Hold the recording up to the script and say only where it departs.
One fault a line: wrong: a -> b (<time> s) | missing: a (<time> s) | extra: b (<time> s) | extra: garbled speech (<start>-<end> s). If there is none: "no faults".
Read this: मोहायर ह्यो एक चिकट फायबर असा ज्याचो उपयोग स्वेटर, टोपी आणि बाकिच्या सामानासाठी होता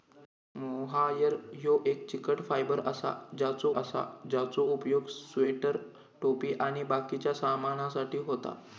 extra: असा ज्याचो (3.7 s)